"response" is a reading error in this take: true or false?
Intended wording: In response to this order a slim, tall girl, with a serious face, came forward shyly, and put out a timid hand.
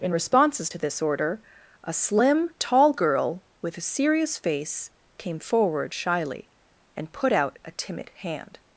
true